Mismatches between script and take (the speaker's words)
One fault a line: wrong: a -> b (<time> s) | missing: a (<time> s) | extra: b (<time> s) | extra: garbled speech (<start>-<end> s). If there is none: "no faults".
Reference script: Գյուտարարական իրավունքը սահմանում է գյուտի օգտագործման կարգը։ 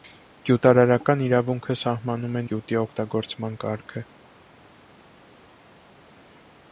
no faults